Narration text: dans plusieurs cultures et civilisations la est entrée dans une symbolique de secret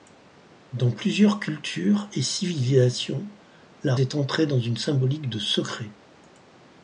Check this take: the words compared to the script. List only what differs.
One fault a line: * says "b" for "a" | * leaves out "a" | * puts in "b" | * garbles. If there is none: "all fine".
all fine